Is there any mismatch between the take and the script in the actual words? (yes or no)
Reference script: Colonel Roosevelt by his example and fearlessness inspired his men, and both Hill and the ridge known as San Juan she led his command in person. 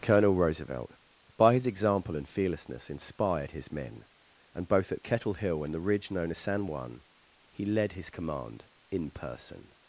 yes